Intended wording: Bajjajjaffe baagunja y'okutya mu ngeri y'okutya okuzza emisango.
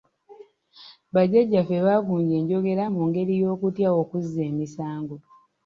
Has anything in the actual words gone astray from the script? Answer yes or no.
yes